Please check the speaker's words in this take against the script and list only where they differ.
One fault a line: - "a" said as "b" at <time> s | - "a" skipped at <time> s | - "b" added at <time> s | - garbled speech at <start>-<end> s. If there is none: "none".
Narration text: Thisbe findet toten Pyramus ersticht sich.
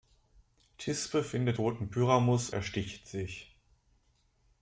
none